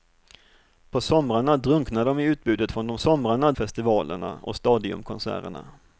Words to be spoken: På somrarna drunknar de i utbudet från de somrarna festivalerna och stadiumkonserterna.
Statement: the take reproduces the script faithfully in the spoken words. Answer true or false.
true